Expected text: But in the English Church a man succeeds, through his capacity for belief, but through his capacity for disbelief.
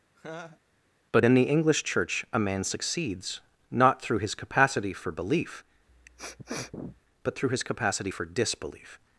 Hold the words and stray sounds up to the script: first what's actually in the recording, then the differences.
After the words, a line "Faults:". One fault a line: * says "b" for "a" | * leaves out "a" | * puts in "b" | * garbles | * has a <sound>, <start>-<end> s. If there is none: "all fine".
But in the English Church a man succeeds, not through his capacity for belief, but through his capacity for disbelief.
Faults:
* has a laugh, 0.2-0.6 s
* puts in "not"
* has a sniff, 5.9-7.0 s